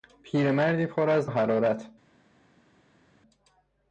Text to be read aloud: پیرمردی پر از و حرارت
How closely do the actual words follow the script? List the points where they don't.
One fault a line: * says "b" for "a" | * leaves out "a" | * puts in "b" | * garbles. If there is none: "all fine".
all fine